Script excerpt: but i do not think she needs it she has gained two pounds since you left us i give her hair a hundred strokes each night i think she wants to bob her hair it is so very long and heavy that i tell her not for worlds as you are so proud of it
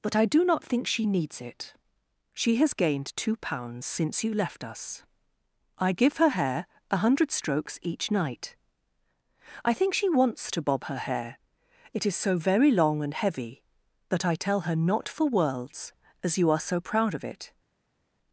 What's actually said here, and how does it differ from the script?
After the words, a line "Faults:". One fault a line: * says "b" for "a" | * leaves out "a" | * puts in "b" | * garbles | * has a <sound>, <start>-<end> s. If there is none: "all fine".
but i do not think she needs it she has gained two pounds since you left us i give her hair a hundred strokes each night i think she wants to bob her hair it is so very long and heavy that i tell her not for worlds as you are so proud of it
Faults:
all fine